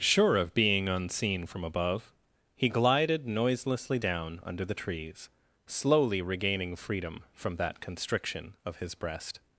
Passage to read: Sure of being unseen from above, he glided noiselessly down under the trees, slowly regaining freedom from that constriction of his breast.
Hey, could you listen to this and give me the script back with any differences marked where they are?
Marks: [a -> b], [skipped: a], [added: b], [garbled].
Sure of being unseen from above, he glided noiselessly down under the trees, slowly regaining freedom from that constriction of his breast.